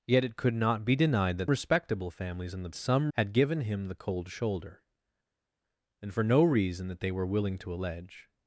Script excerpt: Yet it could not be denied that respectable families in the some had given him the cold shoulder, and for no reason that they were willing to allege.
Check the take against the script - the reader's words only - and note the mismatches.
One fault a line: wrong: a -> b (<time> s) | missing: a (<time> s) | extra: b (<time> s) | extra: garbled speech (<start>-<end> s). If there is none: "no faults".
no faults